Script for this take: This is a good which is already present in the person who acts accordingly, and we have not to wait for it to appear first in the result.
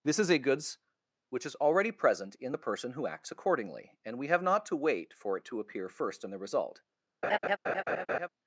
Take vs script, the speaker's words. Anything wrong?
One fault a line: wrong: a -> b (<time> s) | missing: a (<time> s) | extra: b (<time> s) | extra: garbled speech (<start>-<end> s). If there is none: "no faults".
wrong: good -> goods (0.4 s)